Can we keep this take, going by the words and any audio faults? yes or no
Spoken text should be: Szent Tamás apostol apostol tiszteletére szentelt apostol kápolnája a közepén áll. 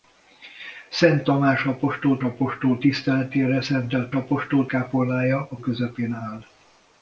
yes